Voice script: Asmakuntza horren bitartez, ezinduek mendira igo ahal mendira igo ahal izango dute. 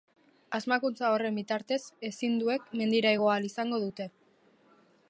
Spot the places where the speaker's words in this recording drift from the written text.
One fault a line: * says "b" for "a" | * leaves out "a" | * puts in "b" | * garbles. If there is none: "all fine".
* leaves out "mendira igo ahal"